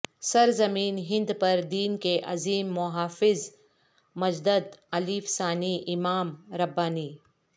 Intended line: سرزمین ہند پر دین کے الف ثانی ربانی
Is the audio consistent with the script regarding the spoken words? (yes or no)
no